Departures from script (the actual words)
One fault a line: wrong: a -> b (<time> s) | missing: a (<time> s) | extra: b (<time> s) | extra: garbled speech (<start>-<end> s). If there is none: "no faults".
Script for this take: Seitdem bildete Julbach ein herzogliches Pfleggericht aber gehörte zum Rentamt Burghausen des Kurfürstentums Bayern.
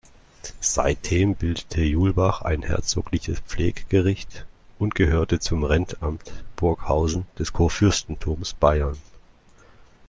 wrong: aber -> und (4.8 s)